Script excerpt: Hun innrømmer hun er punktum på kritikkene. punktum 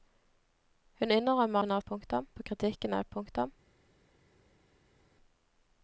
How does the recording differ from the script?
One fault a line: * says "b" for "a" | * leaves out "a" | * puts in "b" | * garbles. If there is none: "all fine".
all fine